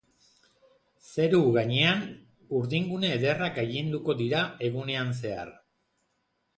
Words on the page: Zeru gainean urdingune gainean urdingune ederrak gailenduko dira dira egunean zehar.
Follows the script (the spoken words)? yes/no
no